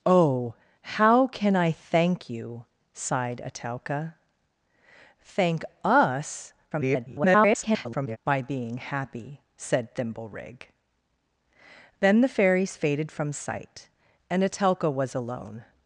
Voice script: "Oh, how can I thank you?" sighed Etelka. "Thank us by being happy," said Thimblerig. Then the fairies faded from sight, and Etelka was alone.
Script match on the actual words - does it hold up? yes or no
no